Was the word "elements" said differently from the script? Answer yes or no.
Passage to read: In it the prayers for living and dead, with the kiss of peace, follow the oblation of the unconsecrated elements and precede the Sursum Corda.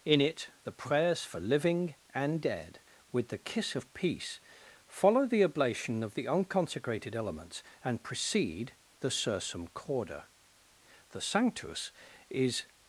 no